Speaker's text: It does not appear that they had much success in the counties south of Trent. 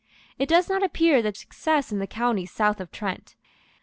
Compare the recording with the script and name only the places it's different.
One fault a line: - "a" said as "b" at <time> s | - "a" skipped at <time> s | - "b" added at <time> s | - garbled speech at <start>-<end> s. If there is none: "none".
- "they had much" skipped at 1.4 s